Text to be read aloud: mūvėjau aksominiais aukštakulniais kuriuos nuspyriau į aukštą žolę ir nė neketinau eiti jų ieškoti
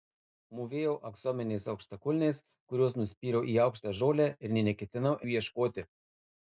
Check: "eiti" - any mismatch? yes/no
yes